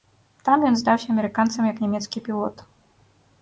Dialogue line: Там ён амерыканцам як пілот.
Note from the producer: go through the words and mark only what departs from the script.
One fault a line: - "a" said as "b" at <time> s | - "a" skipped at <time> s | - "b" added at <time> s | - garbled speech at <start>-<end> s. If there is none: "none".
- "здаўся" added at 0.8 s
- "нямецкі" added at 1.8 s